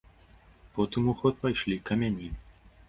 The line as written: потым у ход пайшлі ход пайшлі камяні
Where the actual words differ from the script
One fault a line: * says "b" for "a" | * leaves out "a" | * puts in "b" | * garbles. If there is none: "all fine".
* leaves out "ход пайшлі"